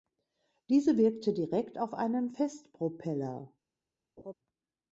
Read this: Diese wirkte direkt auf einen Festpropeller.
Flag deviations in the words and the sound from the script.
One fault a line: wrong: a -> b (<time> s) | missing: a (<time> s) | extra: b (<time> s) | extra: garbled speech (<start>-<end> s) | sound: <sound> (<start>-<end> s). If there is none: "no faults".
sound: laugh (4.2-4.3 s)